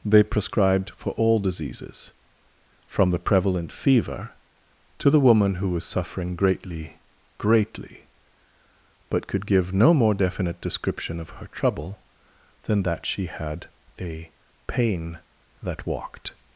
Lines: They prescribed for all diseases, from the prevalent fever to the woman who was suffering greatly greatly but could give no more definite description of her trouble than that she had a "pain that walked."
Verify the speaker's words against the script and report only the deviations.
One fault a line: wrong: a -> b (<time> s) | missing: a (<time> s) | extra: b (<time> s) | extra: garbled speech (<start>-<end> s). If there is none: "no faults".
no faults